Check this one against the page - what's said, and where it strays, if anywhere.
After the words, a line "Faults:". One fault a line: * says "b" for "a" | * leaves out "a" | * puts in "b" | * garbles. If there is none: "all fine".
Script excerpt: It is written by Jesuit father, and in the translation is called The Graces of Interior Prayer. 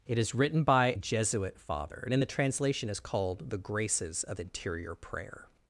It is written by Jesuit father, and in the translation is called The Graces of Interior Prayer.
Faults:
all fine